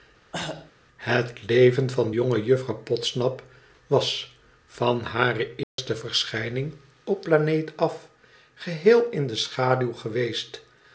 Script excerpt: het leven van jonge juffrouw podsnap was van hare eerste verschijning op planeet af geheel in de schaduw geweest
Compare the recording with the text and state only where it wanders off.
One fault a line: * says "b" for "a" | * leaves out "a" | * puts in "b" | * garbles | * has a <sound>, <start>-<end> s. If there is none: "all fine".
* has a cough, 0.3-0.7 s
* has a dropout, 5.6-5.8 s